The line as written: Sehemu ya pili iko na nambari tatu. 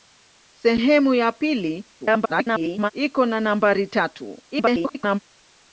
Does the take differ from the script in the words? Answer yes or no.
yes